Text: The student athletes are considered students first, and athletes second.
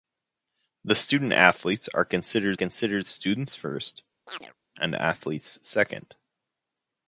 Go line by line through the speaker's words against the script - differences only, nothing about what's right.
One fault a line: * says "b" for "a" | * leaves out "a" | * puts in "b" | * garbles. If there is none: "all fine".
* puts in "considered"